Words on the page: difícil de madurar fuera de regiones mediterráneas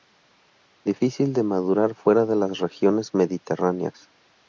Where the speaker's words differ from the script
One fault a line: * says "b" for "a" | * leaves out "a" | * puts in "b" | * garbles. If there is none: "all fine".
* puts in "las"